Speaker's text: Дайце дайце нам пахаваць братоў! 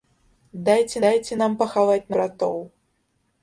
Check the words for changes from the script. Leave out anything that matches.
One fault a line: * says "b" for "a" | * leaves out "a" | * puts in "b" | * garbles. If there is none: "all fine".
all fine